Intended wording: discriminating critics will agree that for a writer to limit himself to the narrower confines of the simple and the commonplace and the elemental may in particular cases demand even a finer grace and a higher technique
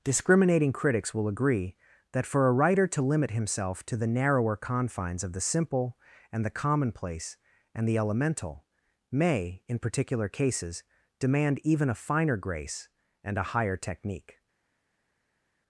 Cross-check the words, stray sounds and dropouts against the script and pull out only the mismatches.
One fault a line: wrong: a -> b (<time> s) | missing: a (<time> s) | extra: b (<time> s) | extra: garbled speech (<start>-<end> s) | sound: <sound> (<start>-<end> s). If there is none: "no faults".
no faults